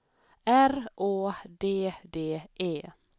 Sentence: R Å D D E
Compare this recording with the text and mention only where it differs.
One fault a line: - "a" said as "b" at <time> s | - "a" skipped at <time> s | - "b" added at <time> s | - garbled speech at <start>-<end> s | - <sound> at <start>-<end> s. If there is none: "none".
none